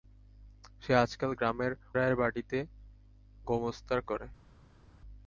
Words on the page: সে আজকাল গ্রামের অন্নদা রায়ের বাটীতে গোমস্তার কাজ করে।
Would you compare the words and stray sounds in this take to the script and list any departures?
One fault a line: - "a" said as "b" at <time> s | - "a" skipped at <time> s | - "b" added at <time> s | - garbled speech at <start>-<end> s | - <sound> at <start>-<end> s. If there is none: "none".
- "অন্নদা" skipped at 1.7 s
- "কাজ" skipped at 4.0 s